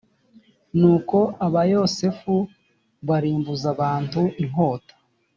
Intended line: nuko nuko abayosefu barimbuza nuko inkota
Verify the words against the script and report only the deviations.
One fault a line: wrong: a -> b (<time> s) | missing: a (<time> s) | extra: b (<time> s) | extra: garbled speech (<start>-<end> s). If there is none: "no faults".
missing: nuko (1.2 s)
wrong: nuko -> abantu (3.8 s)